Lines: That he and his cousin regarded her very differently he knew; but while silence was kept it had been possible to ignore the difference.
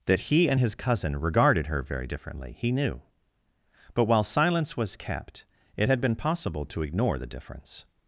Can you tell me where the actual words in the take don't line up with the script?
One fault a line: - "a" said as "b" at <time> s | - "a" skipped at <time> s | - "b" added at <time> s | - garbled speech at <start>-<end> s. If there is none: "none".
none